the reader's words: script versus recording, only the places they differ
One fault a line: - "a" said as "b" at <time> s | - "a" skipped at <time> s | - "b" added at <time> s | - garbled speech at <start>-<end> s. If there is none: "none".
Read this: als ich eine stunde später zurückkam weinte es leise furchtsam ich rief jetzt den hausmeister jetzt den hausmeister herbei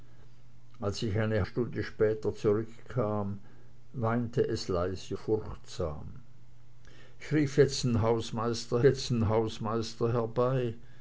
none